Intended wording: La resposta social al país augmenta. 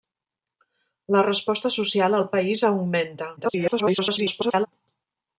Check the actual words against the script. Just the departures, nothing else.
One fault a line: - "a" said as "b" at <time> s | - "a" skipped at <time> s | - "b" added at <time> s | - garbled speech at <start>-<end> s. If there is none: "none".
- garbled speech at 3.4-4.7 s